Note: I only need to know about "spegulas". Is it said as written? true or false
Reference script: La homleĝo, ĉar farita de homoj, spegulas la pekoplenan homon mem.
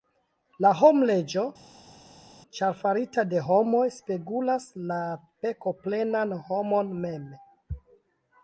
true